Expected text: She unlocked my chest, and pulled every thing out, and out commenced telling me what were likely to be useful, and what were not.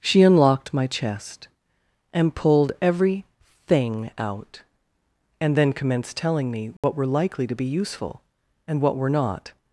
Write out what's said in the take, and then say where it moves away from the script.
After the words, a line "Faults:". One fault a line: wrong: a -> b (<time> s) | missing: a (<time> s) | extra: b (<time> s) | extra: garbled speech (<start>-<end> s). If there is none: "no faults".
She unlocked my chest, and pulled every thing out, and then commenced telling me what were likely to be useful, and what were not.
Faults:
wrong: out -> then (5.5 s)